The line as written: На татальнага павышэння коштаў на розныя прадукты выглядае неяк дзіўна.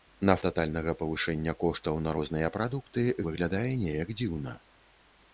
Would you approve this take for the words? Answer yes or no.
yes